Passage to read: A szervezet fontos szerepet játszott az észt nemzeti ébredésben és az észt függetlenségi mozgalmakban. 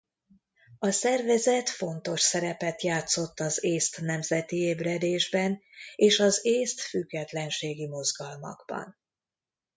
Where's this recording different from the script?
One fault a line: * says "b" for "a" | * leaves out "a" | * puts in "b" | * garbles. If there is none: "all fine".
all fine